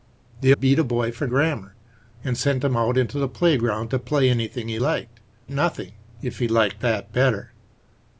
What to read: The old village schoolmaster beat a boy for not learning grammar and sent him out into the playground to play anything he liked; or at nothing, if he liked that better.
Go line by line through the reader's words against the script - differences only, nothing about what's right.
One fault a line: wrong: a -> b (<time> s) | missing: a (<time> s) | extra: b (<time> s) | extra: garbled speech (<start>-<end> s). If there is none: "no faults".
missing: old village schoolmaster (0.5 s)
missing: not learning (1.3 s)
missing: or at (5.2 s)